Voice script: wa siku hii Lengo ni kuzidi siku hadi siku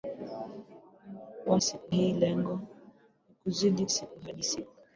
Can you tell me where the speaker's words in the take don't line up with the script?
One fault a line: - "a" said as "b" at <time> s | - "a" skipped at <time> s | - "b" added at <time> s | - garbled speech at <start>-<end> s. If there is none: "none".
none